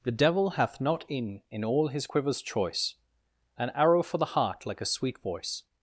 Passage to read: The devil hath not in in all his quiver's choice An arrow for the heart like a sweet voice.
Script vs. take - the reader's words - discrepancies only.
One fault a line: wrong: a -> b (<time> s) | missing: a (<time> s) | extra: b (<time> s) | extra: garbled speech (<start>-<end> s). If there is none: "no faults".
no faults